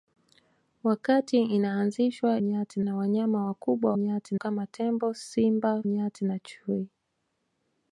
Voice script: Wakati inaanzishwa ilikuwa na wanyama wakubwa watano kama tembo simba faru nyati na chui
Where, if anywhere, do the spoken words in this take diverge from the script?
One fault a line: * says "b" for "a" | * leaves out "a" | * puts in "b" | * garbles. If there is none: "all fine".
* says "nyati" for "ilikuwa"
* says "nyati" for "watano"
* leaves out "faru"